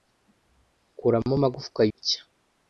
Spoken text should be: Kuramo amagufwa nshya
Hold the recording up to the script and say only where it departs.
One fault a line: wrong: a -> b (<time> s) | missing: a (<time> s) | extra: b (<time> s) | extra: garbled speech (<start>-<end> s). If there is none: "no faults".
no faults